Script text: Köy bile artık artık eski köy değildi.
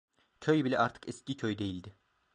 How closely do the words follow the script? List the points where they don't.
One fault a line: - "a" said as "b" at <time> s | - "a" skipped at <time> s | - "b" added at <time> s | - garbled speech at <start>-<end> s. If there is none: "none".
- "artık" skipped at 1.1 s